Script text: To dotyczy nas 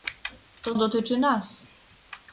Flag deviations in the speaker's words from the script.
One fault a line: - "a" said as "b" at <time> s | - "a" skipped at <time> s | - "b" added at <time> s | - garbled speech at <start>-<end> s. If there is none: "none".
none